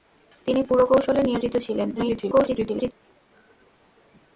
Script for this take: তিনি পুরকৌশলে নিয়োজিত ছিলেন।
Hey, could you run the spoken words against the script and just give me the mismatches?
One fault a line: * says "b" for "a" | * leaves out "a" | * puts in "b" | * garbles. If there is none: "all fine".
* garbles